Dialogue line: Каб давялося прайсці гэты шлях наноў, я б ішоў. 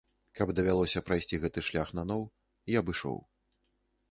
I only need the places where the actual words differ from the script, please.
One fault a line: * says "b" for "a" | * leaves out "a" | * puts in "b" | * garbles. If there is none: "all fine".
all fine